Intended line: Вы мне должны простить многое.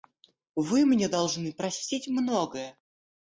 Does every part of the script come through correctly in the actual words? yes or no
yes